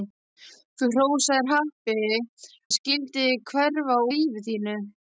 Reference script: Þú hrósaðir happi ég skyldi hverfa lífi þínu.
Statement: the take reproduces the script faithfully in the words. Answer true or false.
true